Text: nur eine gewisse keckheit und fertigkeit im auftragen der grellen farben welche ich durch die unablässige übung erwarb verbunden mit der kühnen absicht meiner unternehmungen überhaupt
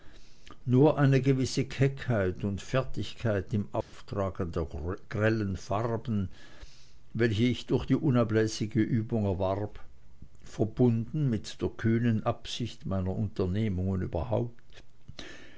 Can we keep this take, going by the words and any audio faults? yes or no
no